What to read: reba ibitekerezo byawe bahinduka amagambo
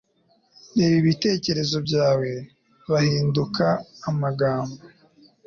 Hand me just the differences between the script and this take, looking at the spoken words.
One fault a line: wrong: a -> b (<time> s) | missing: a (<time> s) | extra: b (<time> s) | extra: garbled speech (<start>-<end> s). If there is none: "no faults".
no faults